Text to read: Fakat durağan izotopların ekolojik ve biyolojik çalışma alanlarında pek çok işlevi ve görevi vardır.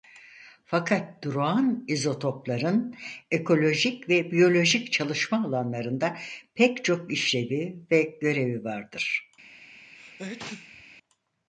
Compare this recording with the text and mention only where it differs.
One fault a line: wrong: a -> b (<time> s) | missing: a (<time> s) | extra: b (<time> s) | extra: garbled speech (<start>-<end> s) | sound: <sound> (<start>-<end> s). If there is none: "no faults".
sound: sneeze (9.9-10.8 s)